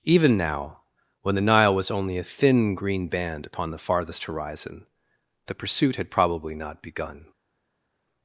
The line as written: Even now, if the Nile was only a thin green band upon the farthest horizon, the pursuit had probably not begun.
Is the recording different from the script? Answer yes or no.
yes